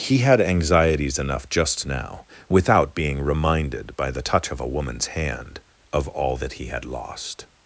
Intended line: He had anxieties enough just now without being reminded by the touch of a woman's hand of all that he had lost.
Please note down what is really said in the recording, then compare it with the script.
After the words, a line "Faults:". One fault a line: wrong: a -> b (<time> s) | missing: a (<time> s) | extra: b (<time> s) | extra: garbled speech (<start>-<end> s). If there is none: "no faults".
He had anxieties enough just now without being reminded by the touch of a woman's hand of all that he had lost.
Faults:
no faults